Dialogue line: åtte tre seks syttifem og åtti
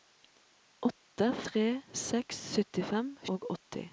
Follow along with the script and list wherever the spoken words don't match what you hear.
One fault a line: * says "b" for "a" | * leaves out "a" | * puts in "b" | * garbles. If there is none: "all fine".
all fine